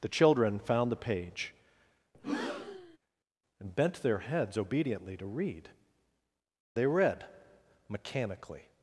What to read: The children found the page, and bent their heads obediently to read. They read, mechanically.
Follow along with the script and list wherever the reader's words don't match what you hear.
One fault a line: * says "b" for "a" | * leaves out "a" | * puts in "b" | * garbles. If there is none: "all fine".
all fine